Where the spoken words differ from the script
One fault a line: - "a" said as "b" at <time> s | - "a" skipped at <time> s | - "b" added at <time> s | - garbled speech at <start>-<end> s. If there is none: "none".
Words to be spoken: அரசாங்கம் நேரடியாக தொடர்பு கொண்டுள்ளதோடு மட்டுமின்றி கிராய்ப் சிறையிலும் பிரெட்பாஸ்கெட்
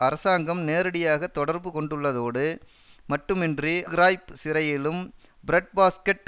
none